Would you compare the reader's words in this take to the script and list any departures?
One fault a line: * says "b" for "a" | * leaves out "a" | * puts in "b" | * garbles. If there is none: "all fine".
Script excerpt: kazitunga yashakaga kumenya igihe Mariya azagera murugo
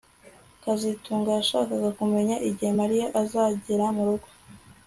all fine